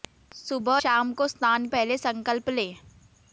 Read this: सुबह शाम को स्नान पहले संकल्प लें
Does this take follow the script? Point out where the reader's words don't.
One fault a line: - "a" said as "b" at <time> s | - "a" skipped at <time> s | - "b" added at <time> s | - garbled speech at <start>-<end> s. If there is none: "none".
none